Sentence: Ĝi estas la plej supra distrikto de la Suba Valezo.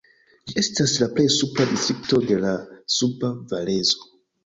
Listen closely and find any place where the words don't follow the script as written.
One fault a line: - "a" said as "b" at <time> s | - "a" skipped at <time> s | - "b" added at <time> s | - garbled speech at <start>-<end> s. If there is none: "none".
none